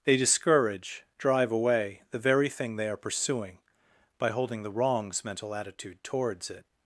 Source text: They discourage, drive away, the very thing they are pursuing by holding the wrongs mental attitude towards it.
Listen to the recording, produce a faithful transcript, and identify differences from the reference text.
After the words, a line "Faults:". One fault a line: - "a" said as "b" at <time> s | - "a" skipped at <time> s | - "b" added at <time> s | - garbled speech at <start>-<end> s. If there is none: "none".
They discourage, drive away, the very thing they are pursuing by holding the wrongs mental attitude towards it.
Faults:
none